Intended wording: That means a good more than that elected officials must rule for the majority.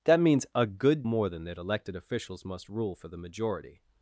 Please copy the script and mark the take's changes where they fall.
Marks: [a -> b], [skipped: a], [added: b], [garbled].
That means a good more than that elected officials must rule for the majority.